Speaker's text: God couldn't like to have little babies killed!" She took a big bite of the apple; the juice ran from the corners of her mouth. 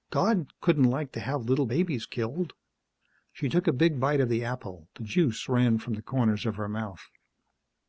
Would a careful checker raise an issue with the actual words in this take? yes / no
no